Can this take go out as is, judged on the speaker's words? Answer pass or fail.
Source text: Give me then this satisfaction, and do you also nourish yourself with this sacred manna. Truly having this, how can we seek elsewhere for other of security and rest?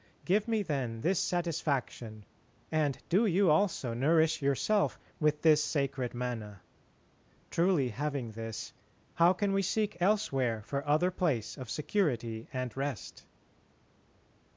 fail